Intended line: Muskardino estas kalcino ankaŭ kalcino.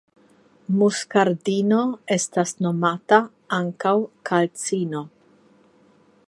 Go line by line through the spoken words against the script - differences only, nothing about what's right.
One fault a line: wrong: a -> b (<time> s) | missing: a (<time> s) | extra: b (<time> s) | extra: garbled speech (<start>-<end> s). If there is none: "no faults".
wrong: kalcino -> nomata (2.7 s)